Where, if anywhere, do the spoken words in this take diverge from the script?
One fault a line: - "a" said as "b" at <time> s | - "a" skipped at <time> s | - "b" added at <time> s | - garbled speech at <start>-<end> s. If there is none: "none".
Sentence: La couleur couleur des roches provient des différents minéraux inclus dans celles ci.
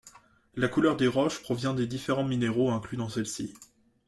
- "couleur" skipped at 1.0 s